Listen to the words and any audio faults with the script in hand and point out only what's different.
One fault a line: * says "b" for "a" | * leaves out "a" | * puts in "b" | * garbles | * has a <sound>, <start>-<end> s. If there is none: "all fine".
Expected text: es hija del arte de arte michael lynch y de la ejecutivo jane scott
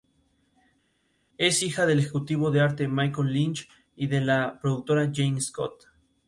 * says "ejecutivo" for "arte"
* says "productora" for "ejecutivo"